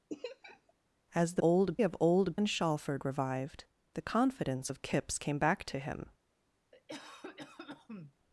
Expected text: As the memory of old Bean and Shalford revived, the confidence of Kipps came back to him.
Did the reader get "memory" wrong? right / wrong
wrong